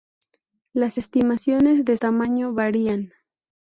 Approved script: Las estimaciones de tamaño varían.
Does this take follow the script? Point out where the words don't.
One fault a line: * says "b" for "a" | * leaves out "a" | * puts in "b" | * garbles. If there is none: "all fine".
all fine